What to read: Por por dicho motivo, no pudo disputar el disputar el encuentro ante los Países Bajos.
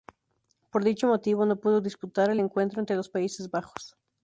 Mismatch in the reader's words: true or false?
true